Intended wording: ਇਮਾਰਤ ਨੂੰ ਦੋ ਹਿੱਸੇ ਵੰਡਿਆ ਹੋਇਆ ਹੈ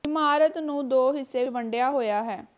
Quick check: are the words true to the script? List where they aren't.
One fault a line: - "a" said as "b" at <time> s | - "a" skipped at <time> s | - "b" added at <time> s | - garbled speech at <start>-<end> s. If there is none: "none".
none